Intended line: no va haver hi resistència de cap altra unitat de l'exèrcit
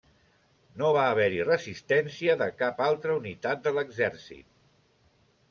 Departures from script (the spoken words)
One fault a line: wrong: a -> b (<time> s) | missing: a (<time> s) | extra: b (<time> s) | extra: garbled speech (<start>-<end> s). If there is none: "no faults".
no faults